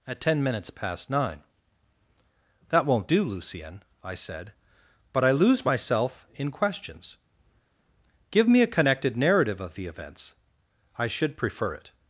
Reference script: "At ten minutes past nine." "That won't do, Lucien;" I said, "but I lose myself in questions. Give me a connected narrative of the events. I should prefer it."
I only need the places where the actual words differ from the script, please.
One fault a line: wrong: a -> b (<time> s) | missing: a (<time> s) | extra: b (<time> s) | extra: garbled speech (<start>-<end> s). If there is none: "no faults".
no faults